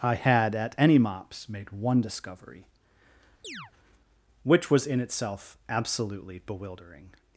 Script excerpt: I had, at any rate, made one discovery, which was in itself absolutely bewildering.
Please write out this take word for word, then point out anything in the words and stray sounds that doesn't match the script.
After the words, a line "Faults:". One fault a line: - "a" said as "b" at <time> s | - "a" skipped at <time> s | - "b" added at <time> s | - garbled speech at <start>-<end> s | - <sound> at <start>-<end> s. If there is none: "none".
I had, at any mops, made one discovery, which was in itself absolutely bewildering.
Faults:
- "rate" said as "mops" at 1.0 s
- chirp at 3.4-3.7 s